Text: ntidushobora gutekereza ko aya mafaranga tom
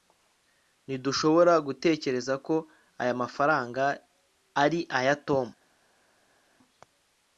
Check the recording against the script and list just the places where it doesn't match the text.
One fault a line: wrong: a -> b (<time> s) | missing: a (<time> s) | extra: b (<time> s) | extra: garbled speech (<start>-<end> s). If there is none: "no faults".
extra: ari aya (4.6 s)